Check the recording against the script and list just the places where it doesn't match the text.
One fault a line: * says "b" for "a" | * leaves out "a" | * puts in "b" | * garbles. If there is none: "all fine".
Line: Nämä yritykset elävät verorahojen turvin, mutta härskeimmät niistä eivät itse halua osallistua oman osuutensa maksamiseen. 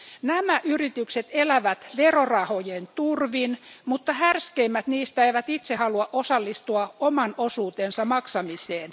all fine